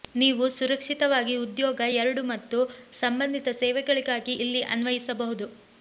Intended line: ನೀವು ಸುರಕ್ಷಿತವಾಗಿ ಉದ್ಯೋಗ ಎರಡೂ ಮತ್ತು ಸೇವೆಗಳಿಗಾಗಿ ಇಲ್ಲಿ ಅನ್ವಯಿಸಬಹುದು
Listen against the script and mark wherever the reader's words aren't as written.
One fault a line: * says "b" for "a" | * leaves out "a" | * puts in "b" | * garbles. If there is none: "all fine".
* puts in "ಸಂಬಂಧಿತ"